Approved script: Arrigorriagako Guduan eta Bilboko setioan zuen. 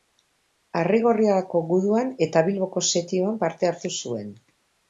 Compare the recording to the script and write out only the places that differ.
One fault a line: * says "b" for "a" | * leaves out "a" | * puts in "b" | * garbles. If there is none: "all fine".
* puts in "parte hartu"